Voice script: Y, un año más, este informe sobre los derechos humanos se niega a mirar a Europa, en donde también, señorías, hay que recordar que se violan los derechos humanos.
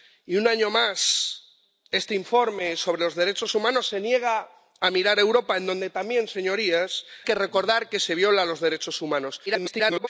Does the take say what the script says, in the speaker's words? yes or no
no